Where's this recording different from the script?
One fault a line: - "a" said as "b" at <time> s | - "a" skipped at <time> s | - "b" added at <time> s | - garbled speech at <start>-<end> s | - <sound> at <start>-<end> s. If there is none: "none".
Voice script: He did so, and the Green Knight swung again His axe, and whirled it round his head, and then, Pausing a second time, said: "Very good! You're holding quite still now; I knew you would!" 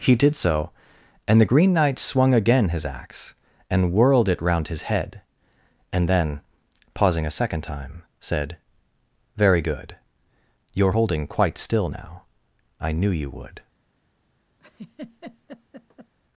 - laugh at 14.6-16.1 s